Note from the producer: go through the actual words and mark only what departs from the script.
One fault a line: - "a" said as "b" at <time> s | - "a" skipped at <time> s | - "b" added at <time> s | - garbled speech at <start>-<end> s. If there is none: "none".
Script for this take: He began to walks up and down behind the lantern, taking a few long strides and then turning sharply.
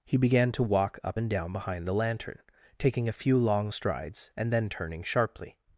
- "walks" said as "walk" at 0.6 s